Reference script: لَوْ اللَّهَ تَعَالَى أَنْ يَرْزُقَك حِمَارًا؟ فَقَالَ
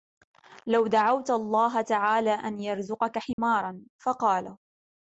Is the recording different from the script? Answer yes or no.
yes